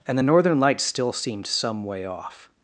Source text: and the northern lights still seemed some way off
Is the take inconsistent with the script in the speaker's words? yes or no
no